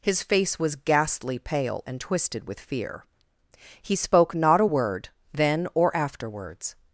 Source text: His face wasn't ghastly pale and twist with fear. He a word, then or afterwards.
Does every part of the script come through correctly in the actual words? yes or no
no